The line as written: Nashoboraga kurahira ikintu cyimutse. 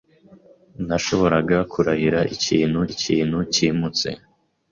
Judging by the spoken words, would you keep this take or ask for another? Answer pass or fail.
fail